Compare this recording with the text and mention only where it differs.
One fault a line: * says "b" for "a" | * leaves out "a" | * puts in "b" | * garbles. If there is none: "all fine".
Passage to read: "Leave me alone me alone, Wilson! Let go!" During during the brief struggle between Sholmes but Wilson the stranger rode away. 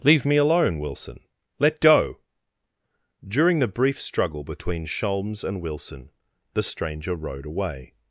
* leaves out "me alone"
* leaves out "during"
* says "and" for "but"